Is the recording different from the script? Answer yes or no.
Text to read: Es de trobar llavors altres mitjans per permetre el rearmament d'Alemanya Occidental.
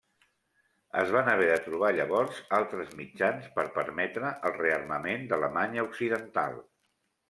yes